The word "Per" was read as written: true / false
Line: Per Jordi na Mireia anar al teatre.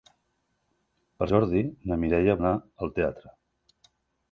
true